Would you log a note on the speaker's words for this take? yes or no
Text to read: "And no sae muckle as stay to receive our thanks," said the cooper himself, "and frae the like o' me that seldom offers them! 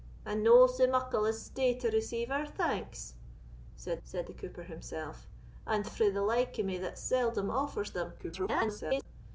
yes